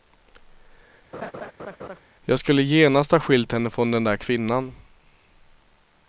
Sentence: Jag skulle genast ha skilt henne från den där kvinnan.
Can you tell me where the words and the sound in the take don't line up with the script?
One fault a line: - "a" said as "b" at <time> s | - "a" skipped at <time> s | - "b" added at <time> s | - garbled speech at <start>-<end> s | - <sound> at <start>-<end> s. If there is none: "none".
- laugh at 1.1-2.0 s